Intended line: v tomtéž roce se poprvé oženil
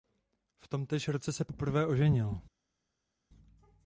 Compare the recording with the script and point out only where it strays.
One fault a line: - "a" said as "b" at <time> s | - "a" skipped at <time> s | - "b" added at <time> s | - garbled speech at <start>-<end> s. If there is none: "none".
none